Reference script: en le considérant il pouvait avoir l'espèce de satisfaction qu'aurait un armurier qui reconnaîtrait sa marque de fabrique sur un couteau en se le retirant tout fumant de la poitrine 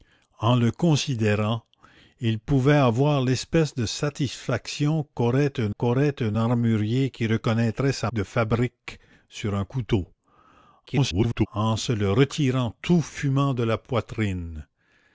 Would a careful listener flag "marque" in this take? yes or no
yes